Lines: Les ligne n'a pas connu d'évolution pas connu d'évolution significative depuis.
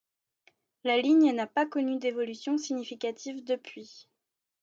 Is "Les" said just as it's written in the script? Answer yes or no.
no